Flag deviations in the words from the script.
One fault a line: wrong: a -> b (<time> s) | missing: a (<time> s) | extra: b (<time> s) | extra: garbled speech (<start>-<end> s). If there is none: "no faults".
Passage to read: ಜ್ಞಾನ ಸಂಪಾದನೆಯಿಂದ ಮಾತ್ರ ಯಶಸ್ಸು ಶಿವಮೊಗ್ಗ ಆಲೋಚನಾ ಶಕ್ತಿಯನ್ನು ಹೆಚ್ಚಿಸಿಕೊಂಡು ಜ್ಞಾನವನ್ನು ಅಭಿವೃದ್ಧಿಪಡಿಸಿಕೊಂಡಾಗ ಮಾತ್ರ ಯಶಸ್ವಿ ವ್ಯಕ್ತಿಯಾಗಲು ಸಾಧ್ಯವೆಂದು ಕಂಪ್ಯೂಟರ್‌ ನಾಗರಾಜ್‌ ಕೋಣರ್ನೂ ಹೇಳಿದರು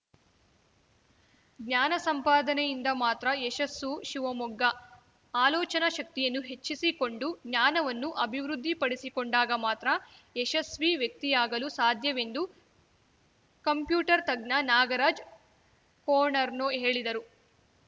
extra: ತಜ್ಞ (14.3 s)